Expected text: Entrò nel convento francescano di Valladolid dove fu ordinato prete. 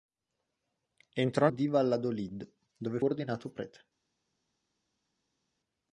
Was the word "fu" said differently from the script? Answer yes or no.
yes